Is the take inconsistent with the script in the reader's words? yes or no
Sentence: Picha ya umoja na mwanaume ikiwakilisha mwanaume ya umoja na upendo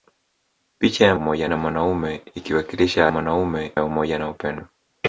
no